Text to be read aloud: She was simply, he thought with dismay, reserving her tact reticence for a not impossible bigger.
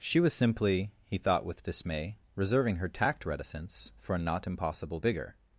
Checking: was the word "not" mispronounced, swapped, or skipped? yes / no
no